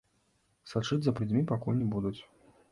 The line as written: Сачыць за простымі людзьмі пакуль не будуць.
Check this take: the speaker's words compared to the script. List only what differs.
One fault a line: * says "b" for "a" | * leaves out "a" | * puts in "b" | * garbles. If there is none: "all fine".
* leaves out "простымі"